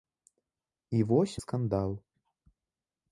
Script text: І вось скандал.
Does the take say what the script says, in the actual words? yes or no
yes